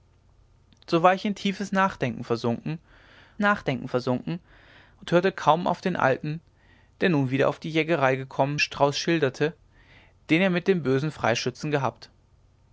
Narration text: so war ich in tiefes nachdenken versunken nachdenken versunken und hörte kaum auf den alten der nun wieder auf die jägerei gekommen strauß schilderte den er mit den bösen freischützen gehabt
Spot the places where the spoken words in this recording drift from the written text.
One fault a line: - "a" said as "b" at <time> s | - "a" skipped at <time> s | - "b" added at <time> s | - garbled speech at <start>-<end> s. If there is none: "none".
none